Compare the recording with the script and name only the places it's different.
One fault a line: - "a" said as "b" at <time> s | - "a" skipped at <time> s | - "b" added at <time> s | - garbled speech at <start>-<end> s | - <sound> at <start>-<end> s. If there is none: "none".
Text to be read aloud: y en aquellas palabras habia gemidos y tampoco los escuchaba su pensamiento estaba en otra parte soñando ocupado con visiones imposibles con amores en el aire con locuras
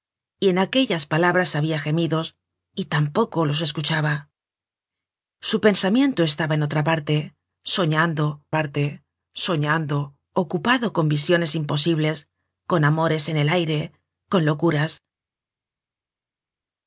- "parte soñando" added at 8.5 s